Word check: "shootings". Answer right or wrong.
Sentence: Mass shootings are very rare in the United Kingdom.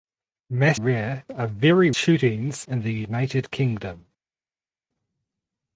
wrong